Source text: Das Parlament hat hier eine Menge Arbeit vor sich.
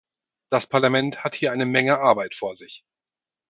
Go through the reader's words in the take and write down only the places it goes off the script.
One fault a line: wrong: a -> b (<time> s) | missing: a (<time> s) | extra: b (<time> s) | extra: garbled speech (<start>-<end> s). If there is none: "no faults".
no faults